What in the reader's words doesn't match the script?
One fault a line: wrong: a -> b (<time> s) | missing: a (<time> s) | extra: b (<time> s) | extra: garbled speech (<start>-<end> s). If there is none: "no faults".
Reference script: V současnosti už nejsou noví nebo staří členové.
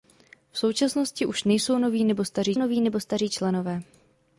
extra: noví nebo staří (2.5 s)